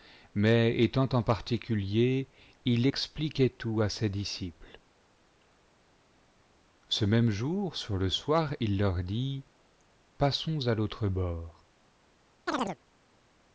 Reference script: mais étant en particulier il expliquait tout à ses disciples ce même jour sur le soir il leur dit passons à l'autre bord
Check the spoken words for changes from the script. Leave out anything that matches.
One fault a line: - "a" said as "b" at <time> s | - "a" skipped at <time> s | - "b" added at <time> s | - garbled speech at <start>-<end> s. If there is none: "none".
none